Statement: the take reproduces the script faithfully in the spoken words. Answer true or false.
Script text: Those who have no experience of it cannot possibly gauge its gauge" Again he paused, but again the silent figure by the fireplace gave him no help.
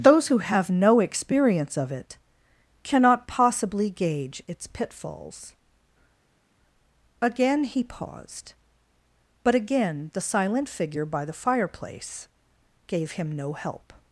false